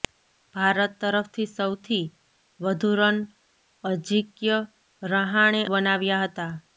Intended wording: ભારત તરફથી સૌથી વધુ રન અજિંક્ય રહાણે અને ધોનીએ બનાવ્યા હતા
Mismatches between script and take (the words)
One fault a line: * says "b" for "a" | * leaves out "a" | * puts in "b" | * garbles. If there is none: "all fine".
* leaves out "અને ધોનીએ"